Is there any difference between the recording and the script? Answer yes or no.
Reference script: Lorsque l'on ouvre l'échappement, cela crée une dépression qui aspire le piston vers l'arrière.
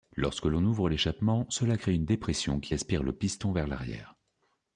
no